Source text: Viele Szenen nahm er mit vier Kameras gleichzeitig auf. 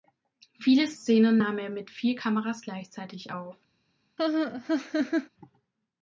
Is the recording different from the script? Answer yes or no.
no